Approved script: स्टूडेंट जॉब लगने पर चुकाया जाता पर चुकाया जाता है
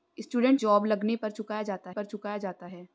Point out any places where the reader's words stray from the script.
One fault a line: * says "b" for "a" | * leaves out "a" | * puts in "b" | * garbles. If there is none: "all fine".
all fine